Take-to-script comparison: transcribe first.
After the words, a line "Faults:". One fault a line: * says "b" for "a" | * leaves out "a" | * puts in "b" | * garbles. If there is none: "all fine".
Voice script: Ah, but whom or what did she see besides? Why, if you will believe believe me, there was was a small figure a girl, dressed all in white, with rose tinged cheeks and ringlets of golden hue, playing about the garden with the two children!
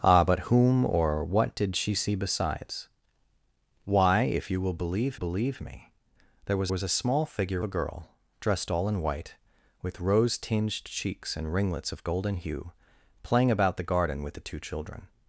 Ah, but whom or what did she see besides? Why, if you will believe believe me, there was was a small figure a girl, dressed all in white, with rose tinged cheeks and ringlets of golden hue, playing about the garden with the two children!
Faults:
all fine